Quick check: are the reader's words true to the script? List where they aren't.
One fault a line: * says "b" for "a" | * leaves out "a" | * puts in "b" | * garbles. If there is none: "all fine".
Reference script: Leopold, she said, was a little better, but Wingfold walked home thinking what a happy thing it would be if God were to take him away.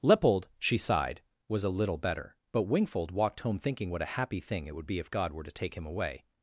* says "sighed" for "said"